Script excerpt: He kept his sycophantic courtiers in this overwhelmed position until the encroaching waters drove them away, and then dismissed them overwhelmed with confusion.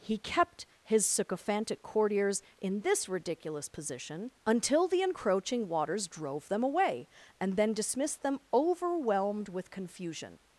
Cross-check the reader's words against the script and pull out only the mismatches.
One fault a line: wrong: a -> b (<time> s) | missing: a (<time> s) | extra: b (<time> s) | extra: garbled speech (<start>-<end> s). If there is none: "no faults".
wrong: overwhelmed -> ridiculous (3.1 s)